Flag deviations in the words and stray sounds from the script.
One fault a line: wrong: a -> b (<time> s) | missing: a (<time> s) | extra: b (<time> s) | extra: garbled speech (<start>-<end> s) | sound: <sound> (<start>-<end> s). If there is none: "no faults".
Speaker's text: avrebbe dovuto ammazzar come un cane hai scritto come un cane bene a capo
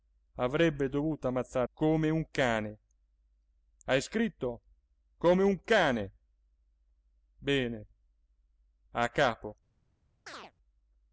sound: chirp (10.3-10.5 s)